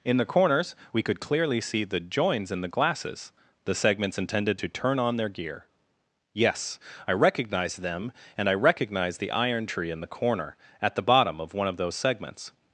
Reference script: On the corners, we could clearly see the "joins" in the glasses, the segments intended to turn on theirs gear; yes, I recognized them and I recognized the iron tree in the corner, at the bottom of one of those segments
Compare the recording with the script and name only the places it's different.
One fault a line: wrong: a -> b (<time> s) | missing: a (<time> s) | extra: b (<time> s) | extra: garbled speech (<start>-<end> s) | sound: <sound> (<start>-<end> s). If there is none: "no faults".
wrong: On -> In (0.0 s)
wrong: theirs -> their (5.1 s)